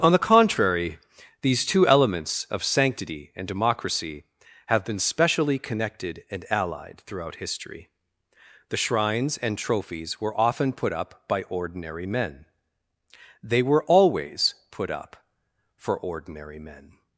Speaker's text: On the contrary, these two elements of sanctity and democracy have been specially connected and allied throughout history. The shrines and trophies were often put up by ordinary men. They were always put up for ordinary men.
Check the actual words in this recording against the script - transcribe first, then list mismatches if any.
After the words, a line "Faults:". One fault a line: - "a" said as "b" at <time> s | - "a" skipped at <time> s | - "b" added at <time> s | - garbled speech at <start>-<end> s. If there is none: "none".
On the contrary, these two elements of sanctity and democracy have been specially connected and allied throughout history. The shrines and trophies were often put up by ordinary men. They were always put up for ordinary men.
Faults:
none